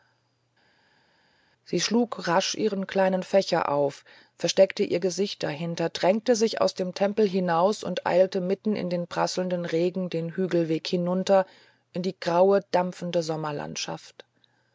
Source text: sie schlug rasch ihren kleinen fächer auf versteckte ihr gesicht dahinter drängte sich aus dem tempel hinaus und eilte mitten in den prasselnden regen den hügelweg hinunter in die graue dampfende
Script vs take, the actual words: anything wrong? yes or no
no